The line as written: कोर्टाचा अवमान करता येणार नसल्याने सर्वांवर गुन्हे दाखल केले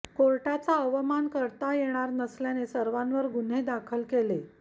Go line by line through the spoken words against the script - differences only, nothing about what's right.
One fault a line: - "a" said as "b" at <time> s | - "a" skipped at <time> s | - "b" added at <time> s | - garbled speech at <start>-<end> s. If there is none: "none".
none